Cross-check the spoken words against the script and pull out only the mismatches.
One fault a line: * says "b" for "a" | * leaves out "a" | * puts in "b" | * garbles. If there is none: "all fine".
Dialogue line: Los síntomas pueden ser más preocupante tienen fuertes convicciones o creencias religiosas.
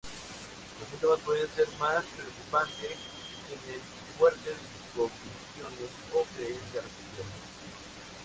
all fine